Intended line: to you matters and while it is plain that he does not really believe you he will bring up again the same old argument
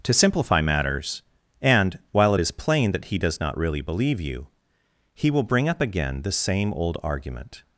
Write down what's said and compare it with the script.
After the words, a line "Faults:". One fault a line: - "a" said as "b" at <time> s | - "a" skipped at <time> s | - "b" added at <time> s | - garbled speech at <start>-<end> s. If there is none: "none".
to simplify matters and while it is plain that he does not really believe you he will bring up again the same old argument
Faults:
- "you" said as "simplify" at 0.1 s